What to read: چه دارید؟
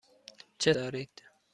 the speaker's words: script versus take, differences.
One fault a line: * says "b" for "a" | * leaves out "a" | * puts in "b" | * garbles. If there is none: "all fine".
all fine